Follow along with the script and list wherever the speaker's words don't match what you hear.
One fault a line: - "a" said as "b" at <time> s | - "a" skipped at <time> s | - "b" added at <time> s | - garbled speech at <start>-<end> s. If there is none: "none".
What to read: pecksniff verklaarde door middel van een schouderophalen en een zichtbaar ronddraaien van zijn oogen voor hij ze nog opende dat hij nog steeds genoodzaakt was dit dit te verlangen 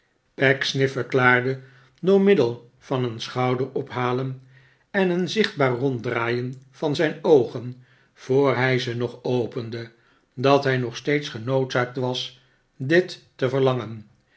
- "dit" skipped at 13.2 s